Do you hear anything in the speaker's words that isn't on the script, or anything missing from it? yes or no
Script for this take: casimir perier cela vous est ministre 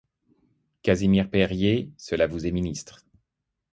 no